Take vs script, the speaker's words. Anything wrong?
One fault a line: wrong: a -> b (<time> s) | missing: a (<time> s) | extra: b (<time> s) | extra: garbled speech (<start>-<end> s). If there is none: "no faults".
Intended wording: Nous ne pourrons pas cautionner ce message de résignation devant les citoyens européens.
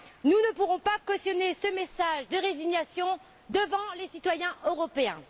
no faults